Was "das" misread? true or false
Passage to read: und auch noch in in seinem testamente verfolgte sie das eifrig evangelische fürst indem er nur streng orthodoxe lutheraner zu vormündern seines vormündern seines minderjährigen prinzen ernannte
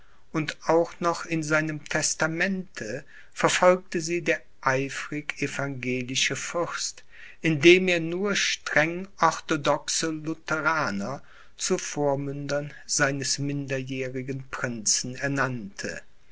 true